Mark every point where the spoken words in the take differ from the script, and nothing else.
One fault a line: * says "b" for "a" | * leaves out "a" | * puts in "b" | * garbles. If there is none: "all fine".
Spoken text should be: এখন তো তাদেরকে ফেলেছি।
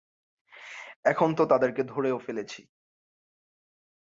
* puts in "ধরেও"